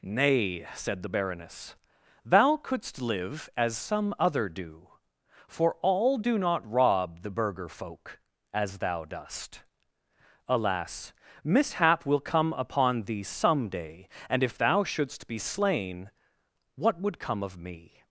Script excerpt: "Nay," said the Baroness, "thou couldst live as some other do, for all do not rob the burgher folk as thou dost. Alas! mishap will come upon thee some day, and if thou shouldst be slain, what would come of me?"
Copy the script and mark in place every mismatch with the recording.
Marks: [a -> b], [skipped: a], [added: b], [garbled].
"Nay," said the Baroness, "thou couldst live as some other do, for all do not rob the burgher folk as thou dost. Alas! mishap will come upon thee some day, and if thou shouldst be slain, what would come of me?"